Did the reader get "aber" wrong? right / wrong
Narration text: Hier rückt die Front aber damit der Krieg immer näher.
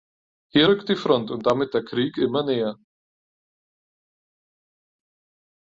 wrong